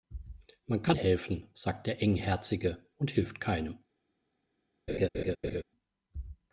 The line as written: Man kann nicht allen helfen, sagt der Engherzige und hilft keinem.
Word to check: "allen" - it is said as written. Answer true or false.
false